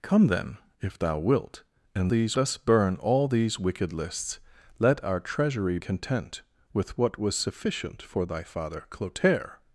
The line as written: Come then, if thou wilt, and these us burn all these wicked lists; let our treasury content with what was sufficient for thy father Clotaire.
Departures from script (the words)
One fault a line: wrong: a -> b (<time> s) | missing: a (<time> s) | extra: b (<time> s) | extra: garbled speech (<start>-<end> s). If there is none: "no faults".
no faults